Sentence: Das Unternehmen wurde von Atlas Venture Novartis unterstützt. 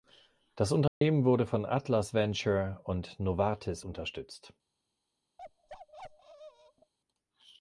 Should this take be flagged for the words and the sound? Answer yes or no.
yes